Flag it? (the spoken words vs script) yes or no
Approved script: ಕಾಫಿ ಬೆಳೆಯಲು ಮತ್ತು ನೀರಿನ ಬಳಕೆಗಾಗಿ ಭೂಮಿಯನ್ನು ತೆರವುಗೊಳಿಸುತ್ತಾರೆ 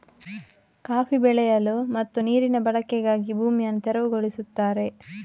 no